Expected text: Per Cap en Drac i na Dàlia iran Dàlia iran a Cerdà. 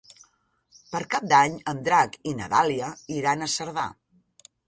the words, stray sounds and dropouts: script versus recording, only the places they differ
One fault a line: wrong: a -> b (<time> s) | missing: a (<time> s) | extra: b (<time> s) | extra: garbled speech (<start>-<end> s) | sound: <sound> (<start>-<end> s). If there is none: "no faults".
extra: d'Any (1.3 s)
missing: Dàlia iran (3.4 s)